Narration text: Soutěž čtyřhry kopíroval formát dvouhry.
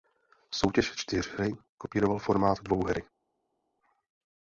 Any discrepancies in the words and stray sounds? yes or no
no